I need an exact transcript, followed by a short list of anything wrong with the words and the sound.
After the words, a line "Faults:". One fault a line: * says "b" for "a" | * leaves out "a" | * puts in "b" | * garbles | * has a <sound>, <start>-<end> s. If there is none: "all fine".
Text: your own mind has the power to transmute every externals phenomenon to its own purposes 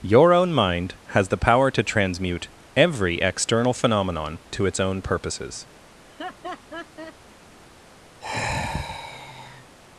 your own mind has the power to transmute every external phenomenon to its own purposes
Faults:
* says "external" for "externals"
* has a laugh, 6.0-7.2 s
* has a sigh, 8.2-9.8 s